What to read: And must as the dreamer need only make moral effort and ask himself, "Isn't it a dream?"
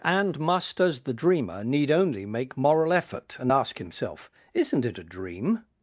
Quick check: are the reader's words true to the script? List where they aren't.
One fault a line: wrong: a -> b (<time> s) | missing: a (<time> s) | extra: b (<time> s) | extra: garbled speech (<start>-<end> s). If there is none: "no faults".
no faults